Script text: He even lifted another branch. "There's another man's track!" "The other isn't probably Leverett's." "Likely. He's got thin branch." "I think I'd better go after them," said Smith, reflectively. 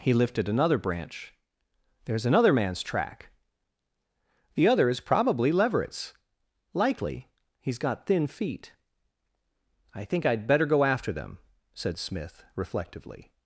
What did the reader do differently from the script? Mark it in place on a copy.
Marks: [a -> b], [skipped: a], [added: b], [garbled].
He [skipped: even] lifted another branch. "There's another man's track!" "The other [isn't -> is] probably Leverett's." "Likely. He's got thin [branch." -> feet] "I think I'd better go after them," said Smith, reflectively.